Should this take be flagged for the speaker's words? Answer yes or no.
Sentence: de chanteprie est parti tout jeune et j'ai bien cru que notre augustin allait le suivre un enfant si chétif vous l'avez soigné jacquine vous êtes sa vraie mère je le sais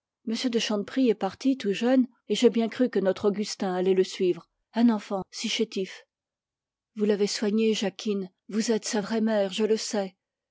no